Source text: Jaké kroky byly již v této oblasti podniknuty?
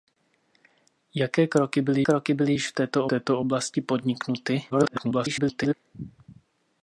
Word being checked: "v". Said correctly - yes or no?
yes